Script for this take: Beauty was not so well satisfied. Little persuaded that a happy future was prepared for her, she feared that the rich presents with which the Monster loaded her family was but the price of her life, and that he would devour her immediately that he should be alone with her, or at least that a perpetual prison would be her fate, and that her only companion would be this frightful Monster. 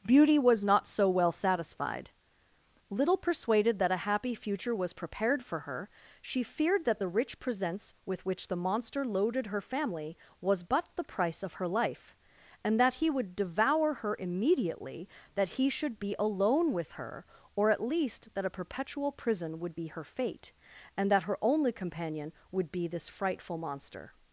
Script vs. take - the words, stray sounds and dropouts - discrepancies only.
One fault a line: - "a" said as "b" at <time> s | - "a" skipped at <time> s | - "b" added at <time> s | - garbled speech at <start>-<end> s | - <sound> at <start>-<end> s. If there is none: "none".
none